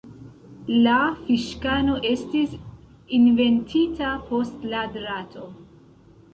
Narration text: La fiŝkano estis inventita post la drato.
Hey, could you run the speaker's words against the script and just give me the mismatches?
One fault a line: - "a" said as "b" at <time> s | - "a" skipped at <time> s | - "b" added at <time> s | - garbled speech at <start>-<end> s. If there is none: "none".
none